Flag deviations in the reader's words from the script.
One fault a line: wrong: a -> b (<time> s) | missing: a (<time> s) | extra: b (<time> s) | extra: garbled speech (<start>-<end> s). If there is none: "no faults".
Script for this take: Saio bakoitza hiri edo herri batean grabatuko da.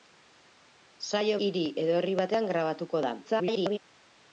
missing: bakoitza (1.4 s)
extra: garbled speech (3.2-3.8 s)